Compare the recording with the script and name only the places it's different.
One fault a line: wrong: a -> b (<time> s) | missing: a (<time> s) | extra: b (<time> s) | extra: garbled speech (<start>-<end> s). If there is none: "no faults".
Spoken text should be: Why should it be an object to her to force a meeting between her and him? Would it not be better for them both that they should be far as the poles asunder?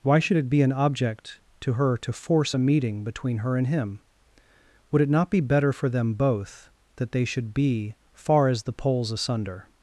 no faults